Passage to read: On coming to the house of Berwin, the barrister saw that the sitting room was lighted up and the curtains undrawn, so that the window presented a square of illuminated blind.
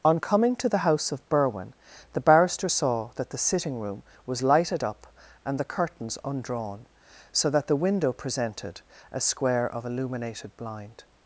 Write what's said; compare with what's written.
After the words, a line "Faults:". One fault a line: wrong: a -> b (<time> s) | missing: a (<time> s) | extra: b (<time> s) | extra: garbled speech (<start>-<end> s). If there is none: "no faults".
On coming to the house of Berwin, the barrister saw that the sitting room was lighted up and the curtains undrawn, so that the window presented a square of illuminated blind.
Faults:
no faults